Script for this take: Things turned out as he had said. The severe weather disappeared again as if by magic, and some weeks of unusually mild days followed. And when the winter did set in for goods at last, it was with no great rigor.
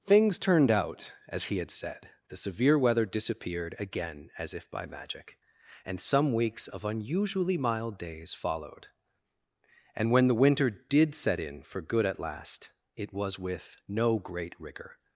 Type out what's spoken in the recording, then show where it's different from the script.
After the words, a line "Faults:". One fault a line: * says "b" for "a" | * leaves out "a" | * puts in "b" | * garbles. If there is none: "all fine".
Things turned out as he had said. The severe weather disappeared again as if by magic, and some weeks of unusually mild days followed. And when the winter did set in for good at last, it was with no great rigor.
Faults:
* says "good" for "goods"